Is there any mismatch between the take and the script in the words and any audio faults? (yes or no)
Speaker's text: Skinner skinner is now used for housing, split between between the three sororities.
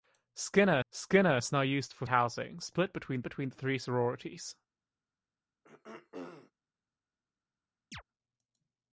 yes